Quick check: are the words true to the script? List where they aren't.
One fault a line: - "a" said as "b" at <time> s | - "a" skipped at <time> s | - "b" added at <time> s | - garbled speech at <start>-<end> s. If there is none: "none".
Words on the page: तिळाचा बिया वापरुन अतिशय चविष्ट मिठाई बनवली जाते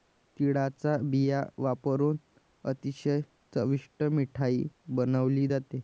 none